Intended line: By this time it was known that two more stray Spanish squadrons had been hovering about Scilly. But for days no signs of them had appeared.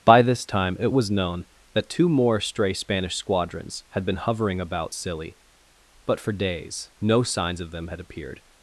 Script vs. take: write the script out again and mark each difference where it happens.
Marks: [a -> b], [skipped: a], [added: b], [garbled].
By this time it was known that two more stray Spanish squadrons had been hovering about Scilly. But for days no signs of them had appeared.